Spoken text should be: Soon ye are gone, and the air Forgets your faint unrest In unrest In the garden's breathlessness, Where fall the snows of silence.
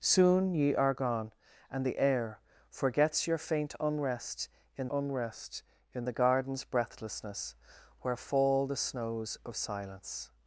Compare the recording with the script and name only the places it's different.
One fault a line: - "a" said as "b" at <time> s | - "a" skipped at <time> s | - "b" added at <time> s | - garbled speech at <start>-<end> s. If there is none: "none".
none